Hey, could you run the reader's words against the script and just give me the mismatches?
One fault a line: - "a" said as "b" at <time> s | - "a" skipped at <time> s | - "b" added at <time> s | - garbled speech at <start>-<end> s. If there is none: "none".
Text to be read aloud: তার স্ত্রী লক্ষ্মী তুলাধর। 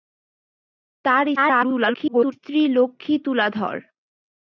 - garbled speech at 1.4-2.3 s